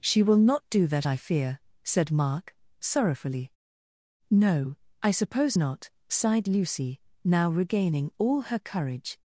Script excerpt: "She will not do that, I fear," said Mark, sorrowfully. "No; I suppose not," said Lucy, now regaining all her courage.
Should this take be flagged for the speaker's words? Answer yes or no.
yes